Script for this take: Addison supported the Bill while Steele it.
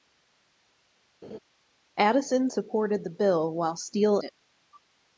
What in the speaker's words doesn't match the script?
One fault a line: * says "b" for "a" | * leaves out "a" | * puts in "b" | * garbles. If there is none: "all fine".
all fine